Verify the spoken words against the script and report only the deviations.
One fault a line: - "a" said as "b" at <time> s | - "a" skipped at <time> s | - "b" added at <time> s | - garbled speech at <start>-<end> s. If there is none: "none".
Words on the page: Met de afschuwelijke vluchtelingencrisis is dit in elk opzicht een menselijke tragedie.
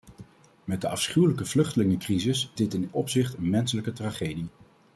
- "is" skipped at 2.5 s
- "elk" skipped at 2.9 s